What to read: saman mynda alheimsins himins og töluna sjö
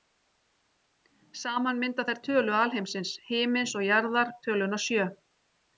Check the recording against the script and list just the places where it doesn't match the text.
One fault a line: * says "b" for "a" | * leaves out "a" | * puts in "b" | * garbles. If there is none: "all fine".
* puts in "þær tölu"
* puts in "jarðar"